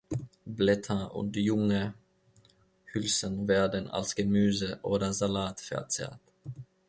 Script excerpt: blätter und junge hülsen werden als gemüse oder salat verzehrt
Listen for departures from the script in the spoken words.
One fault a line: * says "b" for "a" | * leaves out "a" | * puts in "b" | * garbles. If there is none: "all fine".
all fine